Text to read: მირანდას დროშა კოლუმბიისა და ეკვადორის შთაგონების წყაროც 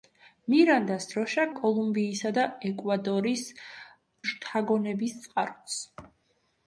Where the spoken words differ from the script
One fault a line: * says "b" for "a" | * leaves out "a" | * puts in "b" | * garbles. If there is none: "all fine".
all fine